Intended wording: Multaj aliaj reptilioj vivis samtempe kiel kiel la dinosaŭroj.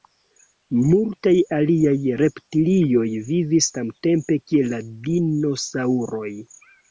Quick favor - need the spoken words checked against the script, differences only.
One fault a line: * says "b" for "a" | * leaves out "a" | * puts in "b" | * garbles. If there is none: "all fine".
* leaves out "kiel"